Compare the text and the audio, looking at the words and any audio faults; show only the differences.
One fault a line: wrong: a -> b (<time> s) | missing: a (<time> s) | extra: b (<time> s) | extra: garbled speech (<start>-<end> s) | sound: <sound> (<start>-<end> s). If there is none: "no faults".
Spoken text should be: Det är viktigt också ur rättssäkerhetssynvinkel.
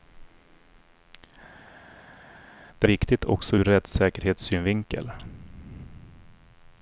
missing: är (2.9 s)